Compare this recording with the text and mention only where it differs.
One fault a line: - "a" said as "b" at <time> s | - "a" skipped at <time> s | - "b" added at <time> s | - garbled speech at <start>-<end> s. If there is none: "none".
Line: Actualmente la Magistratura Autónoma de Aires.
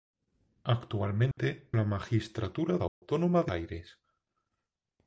none